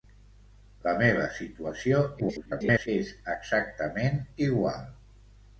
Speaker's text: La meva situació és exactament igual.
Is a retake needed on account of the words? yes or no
yes